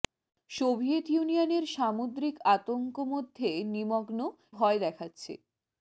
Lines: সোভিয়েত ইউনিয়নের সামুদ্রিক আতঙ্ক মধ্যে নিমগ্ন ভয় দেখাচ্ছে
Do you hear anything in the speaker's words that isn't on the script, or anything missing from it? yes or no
no